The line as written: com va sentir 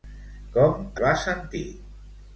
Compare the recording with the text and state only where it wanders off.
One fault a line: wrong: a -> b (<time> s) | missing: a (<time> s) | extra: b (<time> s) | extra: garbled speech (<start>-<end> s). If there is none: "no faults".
no faults